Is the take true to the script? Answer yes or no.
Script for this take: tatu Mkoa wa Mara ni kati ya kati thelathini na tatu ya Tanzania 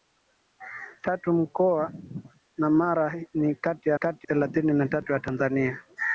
yes